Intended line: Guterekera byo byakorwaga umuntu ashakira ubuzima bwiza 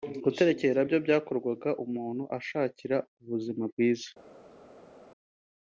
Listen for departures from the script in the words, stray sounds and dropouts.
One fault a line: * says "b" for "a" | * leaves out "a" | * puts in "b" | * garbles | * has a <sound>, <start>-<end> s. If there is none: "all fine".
all fine